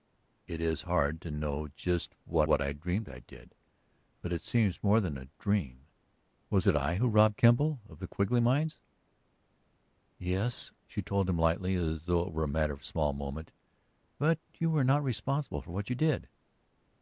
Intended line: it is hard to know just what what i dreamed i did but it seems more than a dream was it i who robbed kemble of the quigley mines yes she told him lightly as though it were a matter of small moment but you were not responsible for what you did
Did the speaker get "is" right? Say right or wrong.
right